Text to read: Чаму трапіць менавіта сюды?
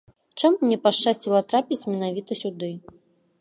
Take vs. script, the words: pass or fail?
fail